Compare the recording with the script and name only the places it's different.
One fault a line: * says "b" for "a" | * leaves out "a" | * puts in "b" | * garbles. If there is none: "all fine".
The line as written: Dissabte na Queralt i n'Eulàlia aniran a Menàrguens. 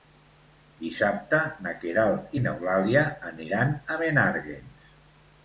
all fine